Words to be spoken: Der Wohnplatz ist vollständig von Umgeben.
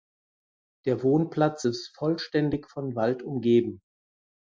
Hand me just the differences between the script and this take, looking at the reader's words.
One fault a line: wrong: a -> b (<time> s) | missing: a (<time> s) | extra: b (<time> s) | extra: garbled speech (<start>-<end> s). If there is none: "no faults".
extra: Wald (3.0 s)